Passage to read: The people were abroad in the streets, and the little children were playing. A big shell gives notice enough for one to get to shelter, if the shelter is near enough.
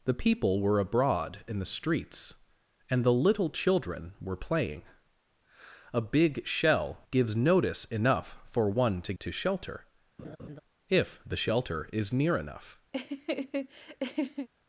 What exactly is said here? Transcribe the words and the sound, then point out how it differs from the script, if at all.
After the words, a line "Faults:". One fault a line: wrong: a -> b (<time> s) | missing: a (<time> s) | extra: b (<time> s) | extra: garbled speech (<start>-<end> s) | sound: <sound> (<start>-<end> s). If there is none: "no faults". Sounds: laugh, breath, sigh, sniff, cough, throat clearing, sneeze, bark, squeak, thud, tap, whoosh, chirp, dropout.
The people were abroad in the streets, and the little children were playing. A big shell gives notice enough for one to to shelter, if the shelter is near enough.
Faults:
missing: get (9.1 s)
sound: laugh (10.2-10.6 s)
sound: laugh (12.9-14.5 s)